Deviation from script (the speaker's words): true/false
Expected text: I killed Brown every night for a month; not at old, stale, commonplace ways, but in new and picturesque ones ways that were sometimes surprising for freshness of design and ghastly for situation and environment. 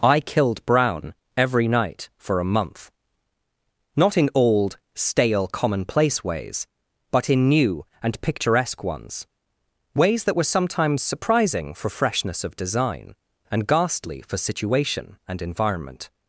true